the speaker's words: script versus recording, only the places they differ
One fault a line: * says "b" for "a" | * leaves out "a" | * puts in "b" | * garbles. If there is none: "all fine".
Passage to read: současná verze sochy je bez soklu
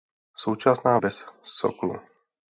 * leaves out "verze sochy je"